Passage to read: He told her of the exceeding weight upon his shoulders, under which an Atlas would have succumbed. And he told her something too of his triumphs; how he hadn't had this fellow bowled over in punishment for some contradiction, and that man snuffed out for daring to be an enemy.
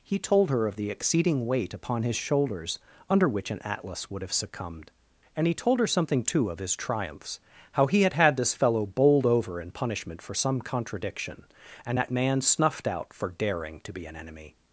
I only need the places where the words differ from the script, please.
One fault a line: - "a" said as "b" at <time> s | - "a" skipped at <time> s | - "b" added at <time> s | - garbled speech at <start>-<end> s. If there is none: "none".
- "hadn't" said as "had" at 8.0 s